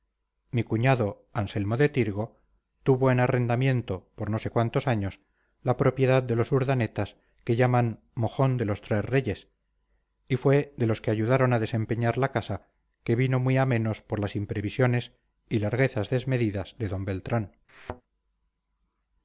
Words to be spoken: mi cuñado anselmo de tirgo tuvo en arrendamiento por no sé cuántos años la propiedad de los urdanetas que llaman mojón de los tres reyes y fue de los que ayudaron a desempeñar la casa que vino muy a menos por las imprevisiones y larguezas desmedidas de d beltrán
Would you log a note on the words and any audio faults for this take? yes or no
yes